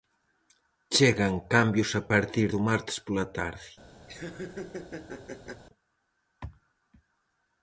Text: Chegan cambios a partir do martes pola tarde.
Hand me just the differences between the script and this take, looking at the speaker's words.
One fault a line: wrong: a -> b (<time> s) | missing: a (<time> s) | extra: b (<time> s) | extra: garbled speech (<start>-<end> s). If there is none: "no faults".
no faults